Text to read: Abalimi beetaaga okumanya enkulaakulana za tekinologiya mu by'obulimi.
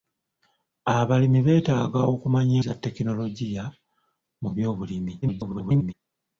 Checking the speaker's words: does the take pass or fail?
fail